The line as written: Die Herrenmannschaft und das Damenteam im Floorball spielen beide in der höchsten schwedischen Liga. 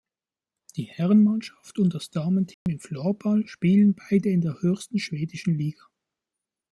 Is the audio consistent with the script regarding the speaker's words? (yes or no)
yes